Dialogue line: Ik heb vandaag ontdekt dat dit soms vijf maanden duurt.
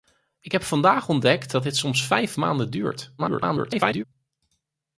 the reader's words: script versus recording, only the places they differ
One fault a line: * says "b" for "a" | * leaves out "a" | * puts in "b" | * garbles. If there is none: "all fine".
* garbles